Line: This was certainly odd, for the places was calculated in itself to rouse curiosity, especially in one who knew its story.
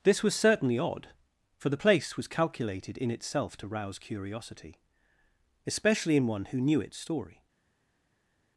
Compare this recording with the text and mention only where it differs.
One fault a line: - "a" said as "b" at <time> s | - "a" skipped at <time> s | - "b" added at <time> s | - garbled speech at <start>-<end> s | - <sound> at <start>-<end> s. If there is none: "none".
- "places" said as "place" at 1.7 s